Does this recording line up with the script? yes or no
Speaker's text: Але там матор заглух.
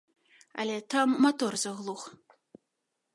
yes